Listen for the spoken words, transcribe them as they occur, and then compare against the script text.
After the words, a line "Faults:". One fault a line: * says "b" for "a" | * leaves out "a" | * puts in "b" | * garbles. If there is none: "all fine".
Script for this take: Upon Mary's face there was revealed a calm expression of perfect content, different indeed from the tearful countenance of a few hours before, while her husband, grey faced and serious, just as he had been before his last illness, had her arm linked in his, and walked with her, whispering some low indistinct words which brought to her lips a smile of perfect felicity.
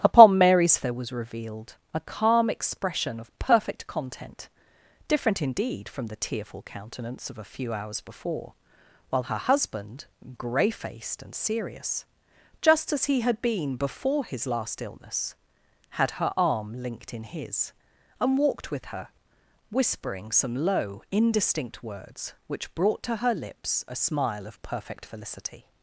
Upon Mary's there was revealed a calm expression of perfect content, different indeed from the tearful countenance of a few hours before, while her husband, grey faced and serious, just as he had been before his last illness, had her arm linked in his, and walked with her, whispering some low indistinct words which brought to her lips a smile of perfect felicity.
Faults:
* leaves out "face"